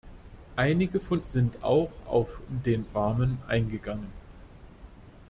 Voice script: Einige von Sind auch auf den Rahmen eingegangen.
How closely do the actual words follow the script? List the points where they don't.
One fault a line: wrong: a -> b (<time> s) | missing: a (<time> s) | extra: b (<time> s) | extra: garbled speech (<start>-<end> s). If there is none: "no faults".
no faults